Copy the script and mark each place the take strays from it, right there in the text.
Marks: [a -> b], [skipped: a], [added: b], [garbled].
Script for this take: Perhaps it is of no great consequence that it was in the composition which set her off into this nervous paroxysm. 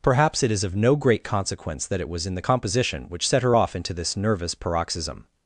Perhaps it is of no great consequence that it was in the composition which set her off into this nervous paroxysm.